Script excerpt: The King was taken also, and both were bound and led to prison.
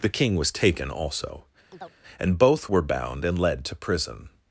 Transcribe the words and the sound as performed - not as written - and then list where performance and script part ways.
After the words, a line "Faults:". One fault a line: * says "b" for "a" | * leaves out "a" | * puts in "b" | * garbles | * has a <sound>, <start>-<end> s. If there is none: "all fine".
The King was taken also, and both were bound and led to prison.
Faults:
* has a chirp, 1.7-1.9 s